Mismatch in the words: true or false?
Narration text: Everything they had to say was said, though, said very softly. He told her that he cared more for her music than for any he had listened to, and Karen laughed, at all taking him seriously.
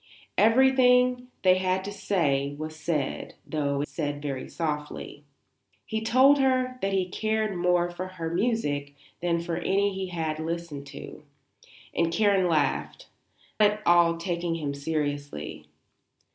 false